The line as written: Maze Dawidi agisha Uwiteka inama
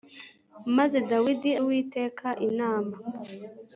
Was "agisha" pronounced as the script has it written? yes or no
no